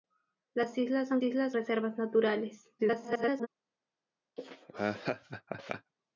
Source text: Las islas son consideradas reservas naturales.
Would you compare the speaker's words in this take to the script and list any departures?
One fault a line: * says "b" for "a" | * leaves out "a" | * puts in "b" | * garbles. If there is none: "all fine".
* says "islas" for "consideradas"
* garbles